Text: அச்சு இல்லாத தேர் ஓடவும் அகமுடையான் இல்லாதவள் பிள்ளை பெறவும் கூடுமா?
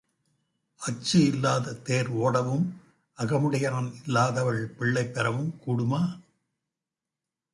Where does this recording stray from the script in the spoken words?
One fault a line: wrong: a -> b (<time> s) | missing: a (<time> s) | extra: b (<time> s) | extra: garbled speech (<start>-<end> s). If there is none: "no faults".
no faults